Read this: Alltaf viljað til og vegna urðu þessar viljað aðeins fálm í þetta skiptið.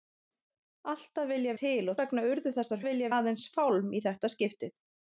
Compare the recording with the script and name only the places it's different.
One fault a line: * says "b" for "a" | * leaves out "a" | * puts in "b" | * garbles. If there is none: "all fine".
all fine